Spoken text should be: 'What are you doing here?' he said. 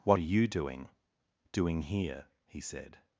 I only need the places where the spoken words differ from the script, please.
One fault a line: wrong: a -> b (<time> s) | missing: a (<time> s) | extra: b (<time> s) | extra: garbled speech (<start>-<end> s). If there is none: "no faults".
extra: doing (1.5 s)